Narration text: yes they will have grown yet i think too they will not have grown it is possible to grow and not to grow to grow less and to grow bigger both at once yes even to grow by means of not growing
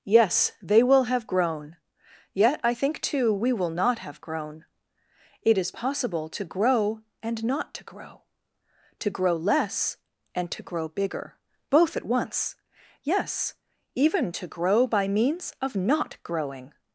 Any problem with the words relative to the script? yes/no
yes